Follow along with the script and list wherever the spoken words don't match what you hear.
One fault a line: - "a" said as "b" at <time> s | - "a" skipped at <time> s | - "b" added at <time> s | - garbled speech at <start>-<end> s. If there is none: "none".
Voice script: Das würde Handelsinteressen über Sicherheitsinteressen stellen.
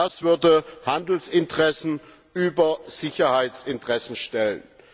none